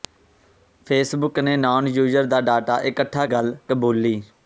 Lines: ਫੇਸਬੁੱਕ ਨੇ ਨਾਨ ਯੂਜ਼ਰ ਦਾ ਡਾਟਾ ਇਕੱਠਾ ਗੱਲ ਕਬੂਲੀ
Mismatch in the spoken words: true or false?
false